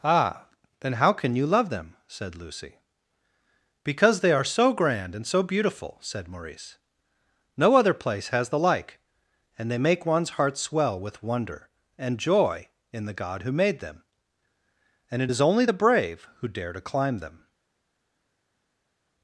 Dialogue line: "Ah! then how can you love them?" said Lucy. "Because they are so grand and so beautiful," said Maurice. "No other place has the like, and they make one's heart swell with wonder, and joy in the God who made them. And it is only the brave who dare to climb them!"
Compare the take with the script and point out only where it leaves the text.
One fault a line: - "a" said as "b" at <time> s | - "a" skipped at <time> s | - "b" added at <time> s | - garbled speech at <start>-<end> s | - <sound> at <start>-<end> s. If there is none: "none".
none